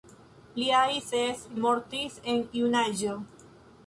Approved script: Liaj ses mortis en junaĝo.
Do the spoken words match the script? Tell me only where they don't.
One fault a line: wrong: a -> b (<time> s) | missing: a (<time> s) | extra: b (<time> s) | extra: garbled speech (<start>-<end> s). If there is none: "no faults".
no faults